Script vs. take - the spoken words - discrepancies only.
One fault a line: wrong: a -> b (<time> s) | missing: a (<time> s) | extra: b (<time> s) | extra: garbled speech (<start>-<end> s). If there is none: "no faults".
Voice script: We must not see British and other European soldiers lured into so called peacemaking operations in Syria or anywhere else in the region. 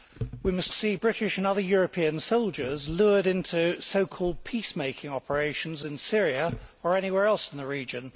missing: not (0.7 s)